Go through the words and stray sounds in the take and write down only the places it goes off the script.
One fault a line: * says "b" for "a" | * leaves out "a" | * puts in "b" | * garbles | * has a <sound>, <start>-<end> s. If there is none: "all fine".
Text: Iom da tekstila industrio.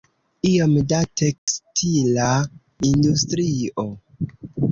* has a dropout, 1.4-1.5 s